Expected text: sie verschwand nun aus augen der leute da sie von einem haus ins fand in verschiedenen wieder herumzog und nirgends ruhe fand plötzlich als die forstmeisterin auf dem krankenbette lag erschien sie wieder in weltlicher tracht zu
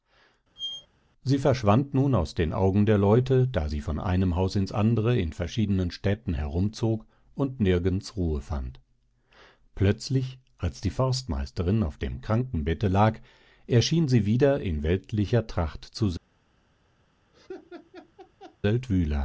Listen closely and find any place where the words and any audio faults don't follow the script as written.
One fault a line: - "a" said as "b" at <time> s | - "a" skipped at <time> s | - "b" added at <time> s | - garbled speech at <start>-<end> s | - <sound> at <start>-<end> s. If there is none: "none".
- squeak at 0.6-0.9 s
- "den" added at 2.3 s
- "fand" said as "andere" at 4.7 s
- "wieder" said as "städten" at 5.9 s
- laugh at 17.3-18.6 s